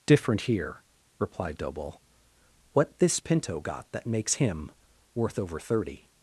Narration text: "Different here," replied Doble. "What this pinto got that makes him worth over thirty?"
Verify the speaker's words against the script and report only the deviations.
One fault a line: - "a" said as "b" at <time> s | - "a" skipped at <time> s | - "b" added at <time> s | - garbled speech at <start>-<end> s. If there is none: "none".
none